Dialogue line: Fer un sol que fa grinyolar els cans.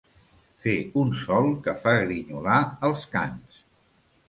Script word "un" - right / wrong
right